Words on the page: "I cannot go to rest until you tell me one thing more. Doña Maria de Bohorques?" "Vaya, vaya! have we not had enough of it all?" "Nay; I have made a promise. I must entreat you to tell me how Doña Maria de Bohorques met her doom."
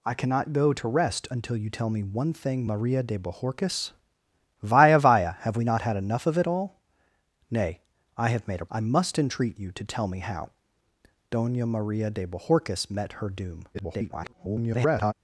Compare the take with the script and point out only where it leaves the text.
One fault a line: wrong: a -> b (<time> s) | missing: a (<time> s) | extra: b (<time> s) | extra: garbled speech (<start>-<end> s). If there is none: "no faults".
missing: more Doña (2.6 s)
missing: promise (8.7 s)
extra: garbled speech (13.7-15.1 s)